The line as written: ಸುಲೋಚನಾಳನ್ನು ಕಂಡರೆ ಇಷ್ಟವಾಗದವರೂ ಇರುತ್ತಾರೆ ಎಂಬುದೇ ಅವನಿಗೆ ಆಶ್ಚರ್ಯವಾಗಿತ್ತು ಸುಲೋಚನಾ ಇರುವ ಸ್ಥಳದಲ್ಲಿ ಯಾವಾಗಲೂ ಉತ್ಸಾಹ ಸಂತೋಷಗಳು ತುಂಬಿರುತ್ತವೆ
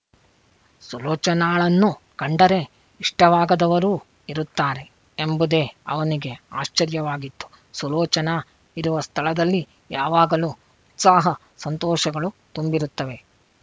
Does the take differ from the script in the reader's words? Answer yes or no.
no